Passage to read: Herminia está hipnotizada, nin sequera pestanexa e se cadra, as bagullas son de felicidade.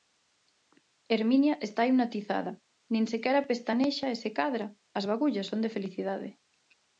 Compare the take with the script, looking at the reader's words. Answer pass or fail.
pass